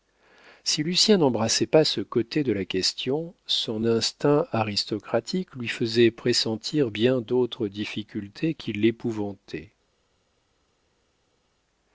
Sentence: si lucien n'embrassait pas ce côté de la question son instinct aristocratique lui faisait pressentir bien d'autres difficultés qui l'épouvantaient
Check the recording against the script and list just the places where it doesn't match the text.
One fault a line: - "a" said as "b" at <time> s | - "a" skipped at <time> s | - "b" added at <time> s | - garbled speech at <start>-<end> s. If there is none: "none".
none